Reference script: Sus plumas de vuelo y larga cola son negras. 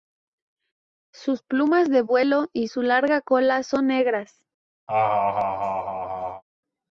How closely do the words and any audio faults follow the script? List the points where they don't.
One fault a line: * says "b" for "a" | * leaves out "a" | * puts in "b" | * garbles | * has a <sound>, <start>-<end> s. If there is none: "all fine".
* puts in "su"
* has a laugh, 4.9-6.4 s